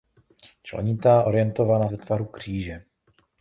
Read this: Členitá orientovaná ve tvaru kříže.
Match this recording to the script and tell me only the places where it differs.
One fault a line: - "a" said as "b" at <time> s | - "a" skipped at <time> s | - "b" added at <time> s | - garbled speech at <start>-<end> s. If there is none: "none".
none